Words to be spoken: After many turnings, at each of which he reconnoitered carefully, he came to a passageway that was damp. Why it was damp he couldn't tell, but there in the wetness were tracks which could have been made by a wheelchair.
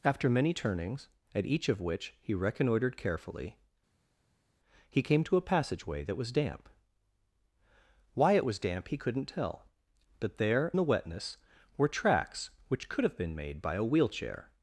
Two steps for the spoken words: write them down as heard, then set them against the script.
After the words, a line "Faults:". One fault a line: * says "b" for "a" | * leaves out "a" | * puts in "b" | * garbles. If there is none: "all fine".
After many turnings, at each of which he reconnoitered carefully, he came to a passageway that was damp. Why it was damp he couldn't tell, but there the wetness were tracks which could have been made by a wheelchair.
Faults:
* leaves out "in"